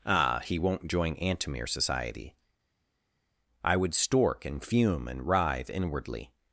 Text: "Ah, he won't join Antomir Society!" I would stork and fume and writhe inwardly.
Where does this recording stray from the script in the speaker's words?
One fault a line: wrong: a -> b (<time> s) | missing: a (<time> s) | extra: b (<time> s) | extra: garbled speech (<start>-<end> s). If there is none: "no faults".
no faults